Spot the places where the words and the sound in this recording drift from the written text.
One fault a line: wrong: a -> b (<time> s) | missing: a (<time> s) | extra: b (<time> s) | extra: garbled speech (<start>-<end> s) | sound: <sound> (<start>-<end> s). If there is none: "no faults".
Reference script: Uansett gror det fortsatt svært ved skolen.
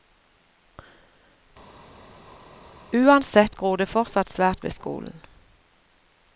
no faults